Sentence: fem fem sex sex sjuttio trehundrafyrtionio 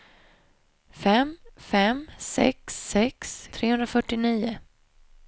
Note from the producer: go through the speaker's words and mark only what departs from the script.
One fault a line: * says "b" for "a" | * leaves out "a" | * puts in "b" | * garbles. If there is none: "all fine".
* leaves out "sjuttio"